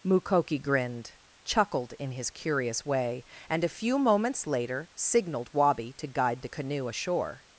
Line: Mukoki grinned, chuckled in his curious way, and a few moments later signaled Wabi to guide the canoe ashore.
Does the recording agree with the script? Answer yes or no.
yes